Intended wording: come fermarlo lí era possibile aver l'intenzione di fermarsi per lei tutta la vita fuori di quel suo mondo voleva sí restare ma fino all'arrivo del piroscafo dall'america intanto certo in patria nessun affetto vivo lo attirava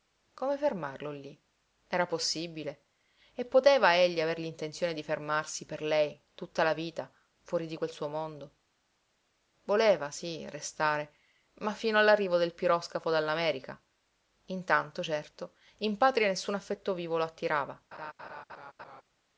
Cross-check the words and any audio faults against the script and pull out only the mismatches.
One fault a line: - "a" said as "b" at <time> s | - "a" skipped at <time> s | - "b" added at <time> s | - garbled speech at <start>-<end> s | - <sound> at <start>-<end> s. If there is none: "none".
- "e poteva egli" added at 3.3 s
- laugh at 17.9-19.0 s